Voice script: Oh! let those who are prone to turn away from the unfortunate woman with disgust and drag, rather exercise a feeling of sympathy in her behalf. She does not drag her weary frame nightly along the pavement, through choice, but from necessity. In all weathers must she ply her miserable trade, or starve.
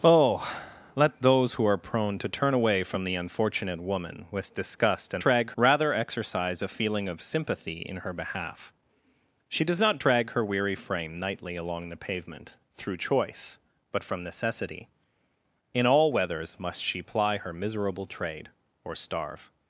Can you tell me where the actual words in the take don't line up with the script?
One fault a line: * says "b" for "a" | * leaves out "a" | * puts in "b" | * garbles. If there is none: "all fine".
all fine